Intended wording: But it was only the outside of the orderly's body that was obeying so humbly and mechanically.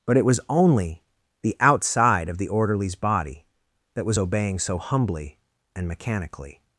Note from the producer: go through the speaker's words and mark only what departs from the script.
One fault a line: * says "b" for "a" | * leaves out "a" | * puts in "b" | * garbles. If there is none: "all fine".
all fine